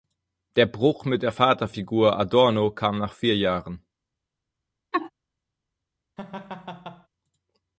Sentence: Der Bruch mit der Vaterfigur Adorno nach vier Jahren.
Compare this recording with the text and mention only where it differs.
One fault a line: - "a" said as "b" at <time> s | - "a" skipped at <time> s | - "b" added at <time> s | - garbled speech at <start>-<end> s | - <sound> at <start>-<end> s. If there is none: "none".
- "kam" added at 2.7 s
- laugh at 4.9-5.1 s
- laugh at 6.2-7.1 s